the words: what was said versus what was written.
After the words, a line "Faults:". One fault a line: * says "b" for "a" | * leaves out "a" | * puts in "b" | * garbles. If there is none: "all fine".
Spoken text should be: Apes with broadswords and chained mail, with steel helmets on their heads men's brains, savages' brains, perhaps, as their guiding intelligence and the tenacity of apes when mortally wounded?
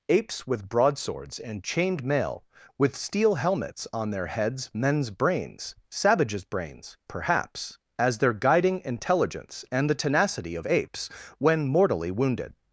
Apes with broadswords and chained mail, with steel helmets on their heads men's brains, savages' brains, perhaps, as their guiding intelligence and the tenacity of apes when mortally wounded?
Faults:
all fine